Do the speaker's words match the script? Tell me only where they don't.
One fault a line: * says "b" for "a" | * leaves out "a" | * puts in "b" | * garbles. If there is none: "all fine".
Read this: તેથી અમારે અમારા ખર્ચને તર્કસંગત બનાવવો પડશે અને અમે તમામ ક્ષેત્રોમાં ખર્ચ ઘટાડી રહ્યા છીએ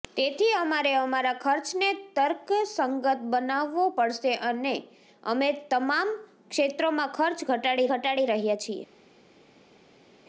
* puts in "ઘટાડી"